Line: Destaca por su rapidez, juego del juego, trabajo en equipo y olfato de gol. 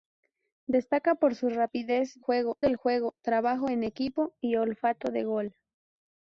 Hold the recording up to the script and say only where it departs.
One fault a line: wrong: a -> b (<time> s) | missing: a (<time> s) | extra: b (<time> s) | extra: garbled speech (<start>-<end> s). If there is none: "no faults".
no faults